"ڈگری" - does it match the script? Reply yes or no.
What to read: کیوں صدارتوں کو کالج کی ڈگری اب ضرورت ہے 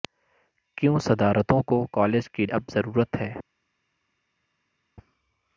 no